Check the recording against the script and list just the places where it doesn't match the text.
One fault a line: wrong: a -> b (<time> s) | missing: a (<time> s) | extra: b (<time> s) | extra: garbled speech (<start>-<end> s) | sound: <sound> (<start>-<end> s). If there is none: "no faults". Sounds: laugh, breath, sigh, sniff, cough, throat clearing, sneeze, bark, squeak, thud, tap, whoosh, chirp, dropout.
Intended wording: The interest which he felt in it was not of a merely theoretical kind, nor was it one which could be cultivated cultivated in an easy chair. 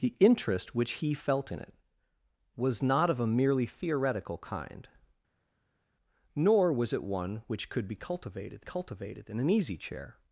no faults